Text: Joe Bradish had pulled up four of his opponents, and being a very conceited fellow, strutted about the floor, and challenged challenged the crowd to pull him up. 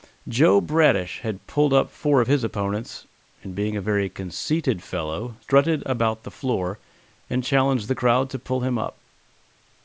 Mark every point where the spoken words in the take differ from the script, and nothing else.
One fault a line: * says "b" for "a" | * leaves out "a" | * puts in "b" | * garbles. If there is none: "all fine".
* leaves out "challenged"